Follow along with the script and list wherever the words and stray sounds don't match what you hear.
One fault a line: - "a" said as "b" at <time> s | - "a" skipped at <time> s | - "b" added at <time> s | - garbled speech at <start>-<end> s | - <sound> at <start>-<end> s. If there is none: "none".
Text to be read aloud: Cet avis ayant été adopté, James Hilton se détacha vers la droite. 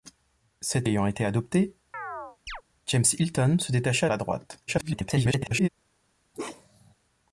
- "avis" skipped at 0.9 s
- chirp at 1.9-2.6 s
- "vers" skipped at 4.1 s
- garbled speech at 4.7-5.7 s
- bark at 6.3-6.9 s